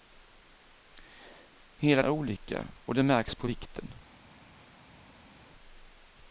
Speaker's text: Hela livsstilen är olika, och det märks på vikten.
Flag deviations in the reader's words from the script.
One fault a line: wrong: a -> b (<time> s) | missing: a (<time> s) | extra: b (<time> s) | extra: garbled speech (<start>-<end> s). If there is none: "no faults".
missing: livsstilen (2.0 s)